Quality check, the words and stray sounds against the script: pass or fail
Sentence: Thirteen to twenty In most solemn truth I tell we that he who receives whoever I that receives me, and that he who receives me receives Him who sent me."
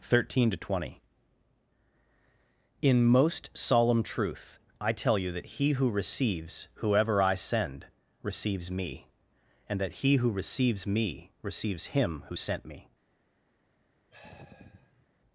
fail